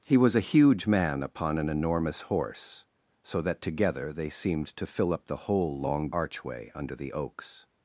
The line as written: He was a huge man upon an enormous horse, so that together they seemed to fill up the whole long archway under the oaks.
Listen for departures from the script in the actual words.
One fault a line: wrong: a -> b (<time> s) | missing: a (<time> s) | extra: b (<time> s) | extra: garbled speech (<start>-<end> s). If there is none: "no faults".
no faults